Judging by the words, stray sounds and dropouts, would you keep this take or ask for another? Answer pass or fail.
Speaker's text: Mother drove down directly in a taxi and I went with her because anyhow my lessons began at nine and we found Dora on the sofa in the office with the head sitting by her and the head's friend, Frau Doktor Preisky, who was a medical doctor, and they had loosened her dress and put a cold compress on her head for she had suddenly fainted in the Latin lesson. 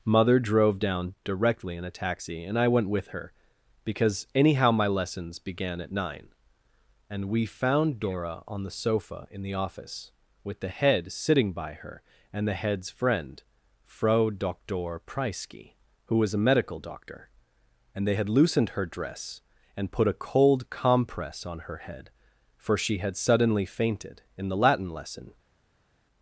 pass